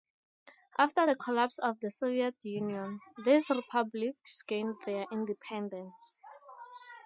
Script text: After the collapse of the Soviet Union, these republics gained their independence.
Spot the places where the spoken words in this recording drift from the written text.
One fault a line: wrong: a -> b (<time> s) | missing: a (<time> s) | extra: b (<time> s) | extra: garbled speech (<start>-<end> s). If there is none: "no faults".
no faults